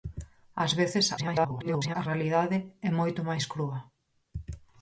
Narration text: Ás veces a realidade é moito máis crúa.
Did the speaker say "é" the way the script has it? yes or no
yes